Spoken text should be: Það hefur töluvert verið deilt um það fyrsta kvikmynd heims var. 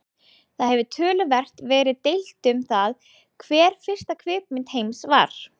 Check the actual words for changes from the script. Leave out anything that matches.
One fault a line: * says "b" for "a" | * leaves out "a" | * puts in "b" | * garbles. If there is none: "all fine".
* puts in "hver"